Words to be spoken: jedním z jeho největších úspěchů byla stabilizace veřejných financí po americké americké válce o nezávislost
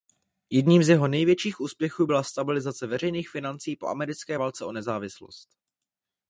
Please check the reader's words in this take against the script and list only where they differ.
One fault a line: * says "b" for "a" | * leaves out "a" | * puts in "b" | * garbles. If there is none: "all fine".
* leaves out "americké"